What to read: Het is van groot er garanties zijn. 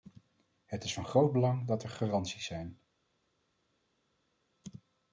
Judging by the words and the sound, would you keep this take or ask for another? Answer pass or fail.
fail